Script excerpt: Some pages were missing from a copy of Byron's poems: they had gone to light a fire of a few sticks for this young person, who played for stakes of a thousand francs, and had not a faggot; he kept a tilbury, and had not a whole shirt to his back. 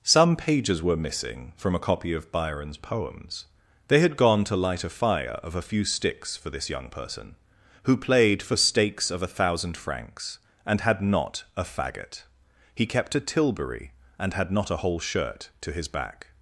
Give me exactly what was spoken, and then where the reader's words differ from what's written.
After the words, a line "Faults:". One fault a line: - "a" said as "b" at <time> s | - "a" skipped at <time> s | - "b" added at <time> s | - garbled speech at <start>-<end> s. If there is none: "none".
Some pages were missing from a copy of Byron's poems: they had gone to light a fire of a few sticks for this young person, who played for stakes of a thousand francs, and had not a faggot; he kept a tilbury, and had not a whole shirt to his back.
Faults:
none